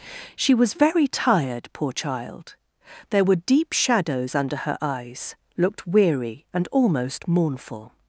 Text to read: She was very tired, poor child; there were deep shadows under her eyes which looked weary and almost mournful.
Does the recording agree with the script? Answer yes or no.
no